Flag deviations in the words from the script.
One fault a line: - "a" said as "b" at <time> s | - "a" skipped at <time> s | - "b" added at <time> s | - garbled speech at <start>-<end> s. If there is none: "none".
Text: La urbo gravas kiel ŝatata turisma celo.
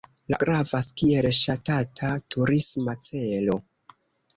- "urbo" skipped at 0.4 s